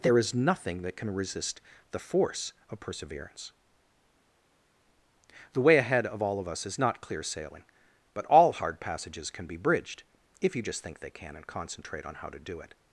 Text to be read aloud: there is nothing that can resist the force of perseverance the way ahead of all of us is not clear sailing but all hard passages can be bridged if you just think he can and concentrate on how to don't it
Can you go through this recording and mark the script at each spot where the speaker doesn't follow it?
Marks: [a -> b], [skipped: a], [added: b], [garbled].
there is nothing that can resist the force of perseverance the way ahead of all of us is not clear sailing but all hard passages can be bridged if you just think [he -> they] can and concentrate on how to [don't -> do] it